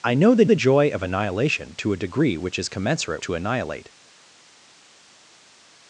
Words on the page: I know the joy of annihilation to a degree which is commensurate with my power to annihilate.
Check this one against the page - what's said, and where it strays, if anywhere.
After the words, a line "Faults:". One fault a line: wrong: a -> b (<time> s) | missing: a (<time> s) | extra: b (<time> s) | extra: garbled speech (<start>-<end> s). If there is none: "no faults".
I know the the joy of annihilation to a degree which is commensurate to annihilate.
Faults:
extra: the (0.4 s)
missing: with my power (3.2 s)